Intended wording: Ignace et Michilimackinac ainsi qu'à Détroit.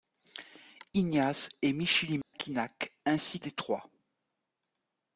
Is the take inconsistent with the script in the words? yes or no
yes